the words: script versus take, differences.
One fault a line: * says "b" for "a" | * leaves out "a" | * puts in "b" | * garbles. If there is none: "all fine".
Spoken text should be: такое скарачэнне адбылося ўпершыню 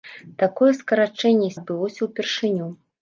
all fine